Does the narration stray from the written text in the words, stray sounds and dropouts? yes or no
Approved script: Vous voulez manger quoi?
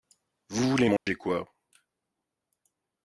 yes